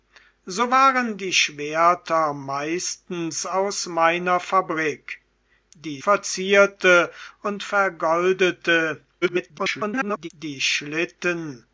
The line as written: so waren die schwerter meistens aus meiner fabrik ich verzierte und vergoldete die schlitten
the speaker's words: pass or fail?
fail